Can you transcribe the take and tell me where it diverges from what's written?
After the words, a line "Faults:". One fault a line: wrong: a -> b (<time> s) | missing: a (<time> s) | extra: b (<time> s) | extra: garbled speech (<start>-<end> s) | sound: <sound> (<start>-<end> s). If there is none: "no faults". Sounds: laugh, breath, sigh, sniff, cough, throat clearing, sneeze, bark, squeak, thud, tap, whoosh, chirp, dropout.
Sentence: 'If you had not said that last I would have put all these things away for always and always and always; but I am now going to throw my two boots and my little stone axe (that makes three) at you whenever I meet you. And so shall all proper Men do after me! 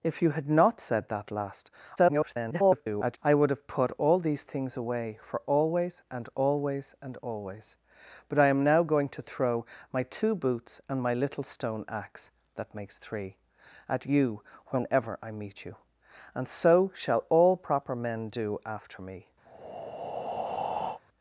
'If you had not said that last [garbled] I would have put all these things away for always and always and always; but I am now going to throw my two boots and my little stone axe (that makes three) at you whenever I meet you. And so shall all proper Men do after me!
Faults:
extra: garbled speech (2.0-3.2 s)
sound: breath (19.5-21.0 s)